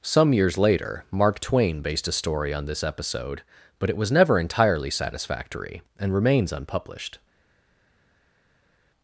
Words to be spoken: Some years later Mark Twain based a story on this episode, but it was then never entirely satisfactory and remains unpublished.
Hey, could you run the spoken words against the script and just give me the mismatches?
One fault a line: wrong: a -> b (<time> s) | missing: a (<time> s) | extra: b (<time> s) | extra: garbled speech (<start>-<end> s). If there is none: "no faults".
missing: then (4.1 s)